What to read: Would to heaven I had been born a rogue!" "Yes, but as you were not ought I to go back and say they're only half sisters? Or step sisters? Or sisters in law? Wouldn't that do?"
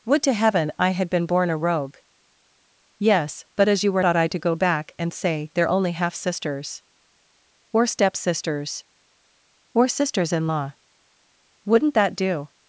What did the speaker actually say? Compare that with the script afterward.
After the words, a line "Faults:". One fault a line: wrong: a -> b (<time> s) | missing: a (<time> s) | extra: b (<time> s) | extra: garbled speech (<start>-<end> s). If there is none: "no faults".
Would to heaven I had been born a rogue!" "Yes, but as you were ought I to go back and say they're only half sisters? Or step sisters? Or sisters in law? Wouldn't that do?"
Faults:
missing: not (4.0 s)